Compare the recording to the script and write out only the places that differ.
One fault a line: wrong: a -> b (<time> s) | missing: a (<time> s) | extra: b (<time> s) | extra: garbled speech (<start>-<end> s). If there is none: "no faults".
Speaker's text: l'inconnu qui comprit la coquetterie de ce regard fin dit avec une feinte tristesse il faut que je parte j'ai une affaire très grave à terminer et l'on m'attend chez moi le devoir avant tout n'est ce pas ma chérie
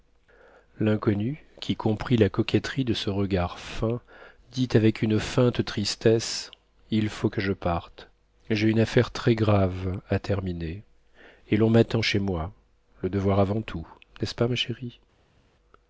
no faults